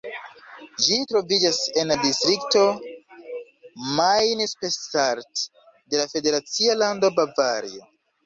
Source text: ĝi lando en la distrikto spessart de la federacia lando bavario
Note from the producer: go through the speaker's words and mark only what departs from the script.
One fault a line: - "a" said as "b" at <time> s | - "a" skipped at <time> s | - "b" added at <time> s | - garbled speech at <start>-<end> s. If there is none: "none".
- "lando" said as "troviĝas" at 1.1 s
- "main" added at 4.0 s